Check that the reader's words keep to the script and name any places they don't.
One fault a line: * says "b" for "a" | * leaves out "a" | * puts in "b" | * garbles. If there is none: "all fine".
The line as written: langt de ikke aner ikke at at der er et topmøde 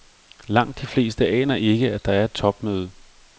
* says "fleste" for "ikke"
* leaves out "at"